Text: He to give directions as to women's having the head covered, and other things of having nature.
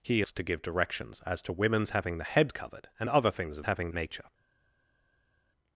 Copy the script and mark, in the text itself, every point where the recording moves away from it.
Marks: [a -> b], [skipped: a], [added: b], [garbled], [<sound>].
He to give directions as to women's having the head covered, and other things of having nature.